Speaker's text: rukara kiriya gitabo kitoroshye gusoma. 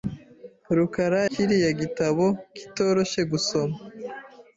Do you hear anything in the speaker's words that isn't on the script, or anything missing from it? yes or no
no